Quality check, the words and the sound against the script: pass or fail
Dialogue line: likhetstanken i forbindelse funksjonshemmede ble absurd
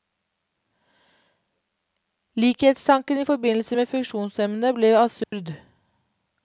fail